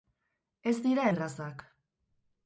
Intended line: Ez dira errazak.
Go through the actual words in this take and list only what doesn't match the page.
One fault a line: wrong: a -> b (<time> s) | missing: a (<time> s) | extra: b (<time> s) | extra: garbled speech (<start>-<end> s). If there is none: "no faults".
no faults